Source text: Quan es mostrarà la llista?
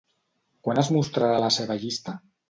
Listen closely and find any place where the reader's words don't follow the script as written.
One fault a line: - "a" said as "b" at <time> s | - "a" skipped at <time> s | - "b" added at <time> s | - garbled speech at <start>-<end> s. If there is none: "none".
- "seva" added at 1.6 s